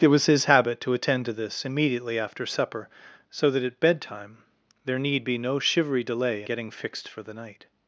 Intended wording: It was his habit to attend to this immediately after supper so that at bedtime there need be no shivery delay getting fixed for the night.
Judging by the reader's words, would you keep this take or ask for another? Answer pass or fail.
pass